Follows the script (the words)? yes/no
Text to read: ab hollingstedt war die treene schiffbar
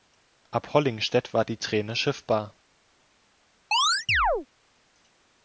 yes